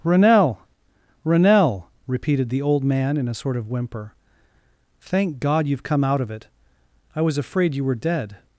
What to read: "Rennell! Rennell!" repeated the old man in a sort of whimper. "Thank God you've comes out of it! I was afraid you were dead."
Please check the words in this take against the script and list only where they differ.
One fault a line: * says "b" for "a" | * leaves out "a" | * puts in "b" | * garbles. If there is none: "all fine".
* says "come" for "comes"